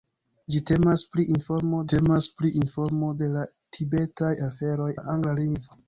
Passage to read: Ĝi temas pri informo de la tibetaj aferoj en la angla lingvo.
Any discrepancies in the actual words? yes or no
yes